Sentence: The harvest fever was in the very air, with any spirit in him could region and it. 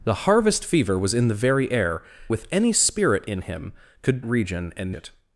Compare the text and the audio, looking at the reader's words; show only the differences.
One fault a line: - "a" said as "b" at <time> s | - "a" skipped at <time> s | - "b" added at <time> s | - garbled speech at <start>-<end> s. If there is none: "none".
none